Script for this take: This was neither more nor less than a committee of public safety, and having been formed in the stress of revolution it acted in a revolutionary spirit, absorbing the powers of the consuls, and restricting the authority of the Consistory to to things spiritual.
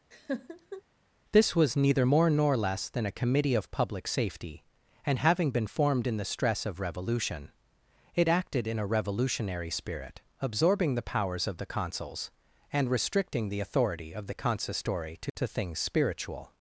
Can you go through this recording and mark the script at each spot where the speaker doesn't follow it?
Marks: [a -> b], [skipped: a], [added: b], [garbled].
This was neither more nor less than a committee of public safety, and having been formed in the stress of revolution it acted in a revolutionary spirit, absorbing the powers of the consuls, and restricting the authority of the Consistory to to things spiritual.